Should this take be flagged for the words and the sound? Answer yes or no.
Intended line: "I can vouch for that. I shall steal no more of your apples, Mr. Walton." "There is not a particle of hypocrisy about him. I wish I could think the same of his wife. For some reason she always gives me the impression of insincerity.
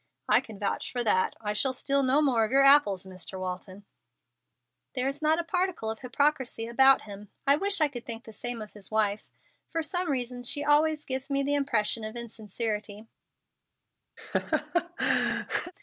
yes